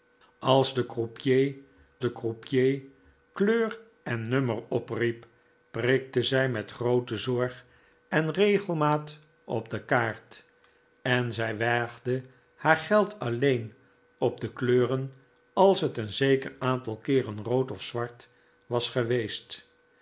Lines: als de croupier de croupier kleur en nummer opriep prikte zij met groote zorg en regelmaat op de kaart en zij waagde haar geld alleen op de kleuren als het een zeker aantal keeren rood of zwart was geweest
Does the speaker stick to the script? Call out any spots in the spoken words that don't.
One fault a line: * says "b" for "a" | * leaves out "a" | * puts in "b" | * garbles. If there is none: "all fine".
all fine